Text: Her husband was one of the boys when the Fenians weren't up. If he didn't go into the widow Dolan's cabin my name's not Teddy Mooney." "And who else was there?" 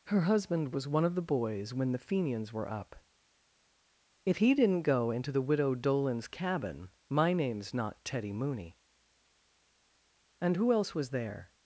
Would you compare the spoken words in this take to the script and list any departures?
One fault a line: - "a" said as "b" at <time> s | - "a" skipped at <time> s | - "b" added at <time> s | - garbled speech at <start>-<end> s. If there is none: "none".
- "weren't" said as "were" at 2.5 s